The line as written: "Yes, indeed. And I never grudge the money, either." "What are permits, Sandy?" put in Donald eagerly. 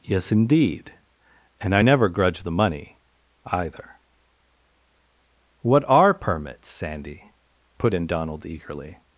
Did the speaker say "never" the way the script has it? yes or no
yes